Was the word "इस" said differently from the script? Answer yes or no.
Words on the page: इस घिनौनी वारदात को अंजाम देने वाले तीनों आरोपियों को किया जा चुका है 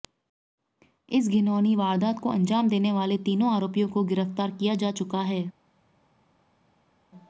no